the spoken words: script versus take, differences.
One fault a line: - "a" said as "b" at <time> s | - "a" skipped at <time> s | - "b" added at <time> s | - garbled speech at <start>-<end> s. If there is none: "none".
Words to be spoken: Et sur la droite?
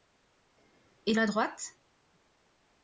- "sur" skipped at 1.1 s